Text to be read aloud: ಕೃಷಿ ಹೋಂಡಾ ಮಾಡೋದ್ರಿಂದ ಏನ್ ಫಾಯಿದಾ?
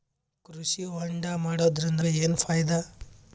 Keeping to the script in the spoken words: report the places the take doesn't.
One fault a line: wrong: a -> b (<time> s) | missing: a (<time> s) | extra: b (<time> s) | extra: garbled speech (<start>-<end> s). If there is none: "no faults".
no faults